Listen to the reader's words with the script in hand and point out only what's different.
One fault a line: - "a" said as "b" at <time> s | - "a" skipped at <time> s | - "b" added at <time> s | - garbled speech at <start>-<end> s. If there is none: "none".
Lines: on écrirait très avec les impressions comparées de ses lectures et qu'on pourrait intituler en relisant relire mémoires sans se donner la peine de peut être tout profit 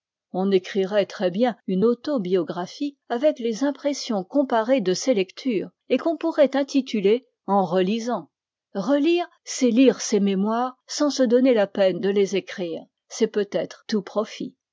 - "bien une autobiographie" added at 1.3 s
- "c'est lire ses" added at 9.4 s
- "les écrire c'est" added at 12.1 s